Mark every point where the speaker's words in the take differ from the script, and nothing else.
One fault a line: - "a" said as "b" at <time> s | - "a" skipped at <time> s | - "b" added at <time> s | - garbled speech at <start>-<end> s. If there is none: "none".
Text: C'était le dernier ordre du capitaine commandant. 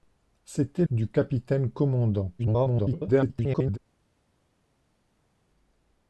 - "le dernier ordre" skipped at 0.8 s
- garbled speech at 2.4-3.8 s